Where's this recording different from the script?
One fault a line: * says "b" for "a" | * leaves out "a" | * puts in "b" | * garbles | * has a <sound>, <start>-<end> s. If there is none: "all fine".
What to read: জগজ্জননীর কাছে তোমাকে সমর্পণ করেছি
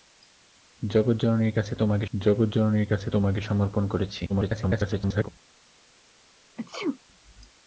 * puts in "জগজ্জননীর কাছে তোমাকে"
* garbles
* has a sneeze, 6.6-7.0 s